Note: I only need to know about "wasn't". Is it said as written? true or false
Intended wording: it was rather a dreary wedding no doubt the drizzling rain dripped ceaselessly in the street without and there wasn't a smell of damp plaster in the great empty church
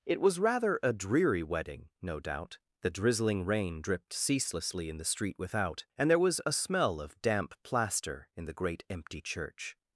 false